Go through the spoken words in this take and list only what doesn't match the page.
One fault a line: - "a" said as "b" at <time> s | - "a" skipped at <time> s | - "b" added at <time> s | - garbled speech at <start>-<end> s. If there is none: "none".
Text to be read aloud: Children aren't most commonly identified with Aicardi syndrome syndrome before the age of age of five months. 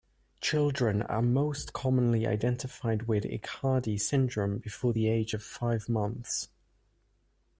- "aren't" said as "are" at 1.0 s
- "syndrome" skipped at 4.6 s
- "age of" skipped at 5.4 s